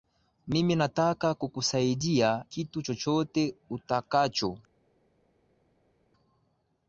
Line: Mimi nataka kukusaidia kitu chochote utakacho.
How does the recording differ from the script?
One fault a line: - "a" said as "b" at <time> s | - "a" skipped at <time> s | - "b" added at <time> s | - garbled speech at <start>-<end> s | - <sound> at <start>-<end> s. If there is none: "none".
none